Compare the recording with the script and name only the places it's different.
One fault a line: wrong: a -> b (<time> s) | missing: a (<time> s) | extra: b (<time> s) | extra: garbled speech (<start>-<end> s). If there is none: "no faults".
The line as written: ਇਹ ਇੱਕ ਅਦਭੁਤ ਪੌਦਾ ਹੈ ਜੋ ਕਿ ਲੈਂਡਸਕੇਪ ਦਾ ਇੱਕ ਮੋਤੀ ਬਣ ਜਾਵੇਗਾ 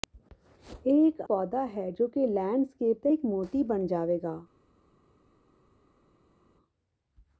missing: ਅਦਭੁਤ (1.2 s)